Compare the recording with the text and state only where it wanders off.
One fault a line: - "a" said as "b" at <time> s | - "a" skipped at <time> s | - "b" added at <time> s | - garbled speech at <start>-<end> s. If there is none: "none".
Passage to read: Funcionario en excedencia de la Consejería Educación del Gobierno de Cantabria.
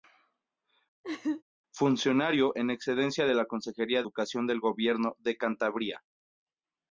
none